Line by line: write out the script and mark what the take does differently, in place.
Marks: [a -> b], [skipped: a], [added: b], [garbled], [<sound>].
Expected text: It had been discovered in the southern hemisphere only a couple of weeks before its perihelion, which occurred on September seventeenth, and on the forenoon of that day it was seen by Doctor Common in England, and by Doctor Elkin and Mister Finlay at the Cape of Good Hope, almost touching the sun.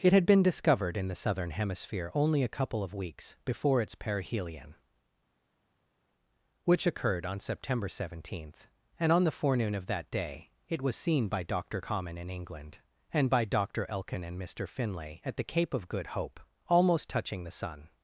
It had been discovered in the southern hemisphere only a couple of weeks before its perihelion, which occurred on September seventeenth, and on the forenoon of that day it was seen by Doctor Common in England, and by Doctor Elkin and Mister Finlay at the Cape of Good Hope, almost touching the sun.